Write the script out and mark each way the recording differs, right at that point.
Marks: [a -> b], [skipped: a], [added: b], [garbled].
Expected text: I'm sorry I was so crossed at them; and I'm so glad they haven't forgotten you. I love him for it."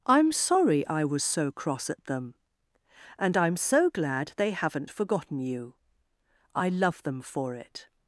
I'm sorry I was so [crossed -> cross] at them; and I'm so glad they haven't forgotten you. I love [him -> them] for it."